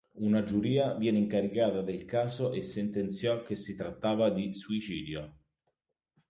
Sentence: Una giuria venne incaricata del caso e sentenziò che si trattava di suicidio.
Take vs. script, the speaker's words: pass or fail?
pass